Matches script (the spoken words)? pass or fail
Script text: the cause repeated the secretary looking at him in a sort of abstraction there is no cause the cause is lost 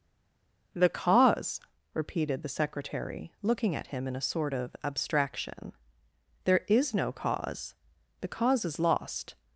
pass